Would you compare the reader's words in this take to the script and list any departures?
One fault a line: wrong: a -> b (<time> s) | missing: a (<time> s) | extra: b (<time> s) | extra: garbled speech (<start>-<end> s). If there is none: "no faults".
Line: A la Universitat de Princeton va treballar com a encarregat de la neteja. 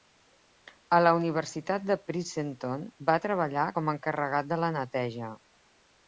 no faults